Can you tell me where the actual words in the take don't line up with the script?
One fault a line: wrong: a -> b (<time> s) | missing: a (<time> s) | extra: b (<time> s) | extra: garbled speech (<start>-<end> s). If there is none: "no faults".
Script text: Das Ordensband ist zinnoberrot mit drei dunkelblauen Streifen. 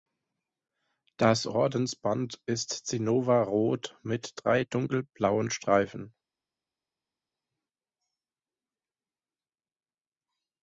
no faults